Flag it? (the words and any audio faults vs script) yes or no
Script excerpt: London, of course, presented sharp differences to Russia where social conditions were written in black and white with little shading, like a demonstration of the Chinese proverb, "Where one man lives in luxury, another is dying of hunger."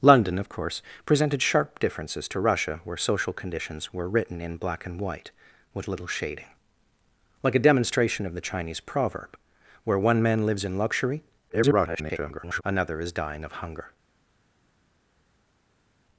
yes